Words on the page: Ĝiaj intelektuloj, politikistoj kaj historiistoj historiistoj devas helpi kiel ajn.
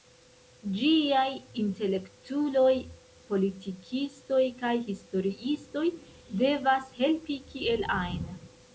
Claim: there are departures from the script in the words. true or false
true